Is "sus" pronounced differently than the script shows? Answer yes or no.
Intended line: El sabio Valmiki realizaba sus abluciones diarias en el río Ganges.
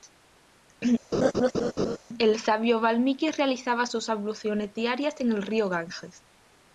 no